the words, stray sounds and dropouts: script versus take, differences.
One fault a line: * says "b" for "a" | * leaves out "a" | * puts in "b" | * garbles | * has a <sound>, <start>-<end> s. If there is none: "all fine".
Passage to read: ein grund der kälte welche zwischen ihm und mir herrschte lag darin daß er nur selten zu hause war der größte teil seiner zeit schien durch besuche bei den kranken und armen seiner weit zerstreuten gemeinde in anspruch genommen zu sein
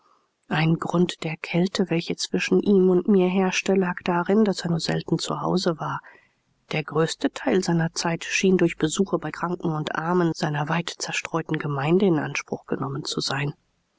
* leaves out "den"